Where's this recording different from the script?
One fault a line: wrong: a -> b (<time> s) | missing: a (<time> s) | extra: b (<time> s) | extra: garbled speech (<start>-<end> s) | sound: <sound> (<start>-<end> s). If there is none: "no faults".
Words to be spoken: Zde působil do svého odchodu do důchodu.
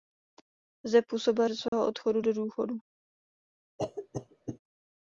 sound: dropout (1.7-1.7 s)
sound: cough (3.8-4.6 s)